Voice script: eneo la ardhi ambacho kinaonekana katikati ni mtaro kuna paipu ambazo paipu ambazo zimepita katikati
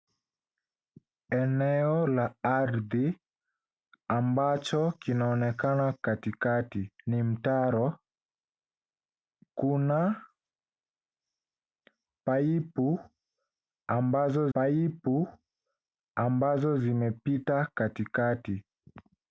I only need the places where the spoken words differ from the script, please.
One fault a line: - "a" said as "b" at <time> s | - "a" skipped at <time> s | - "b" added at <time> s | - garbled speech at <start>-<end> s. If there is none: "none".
none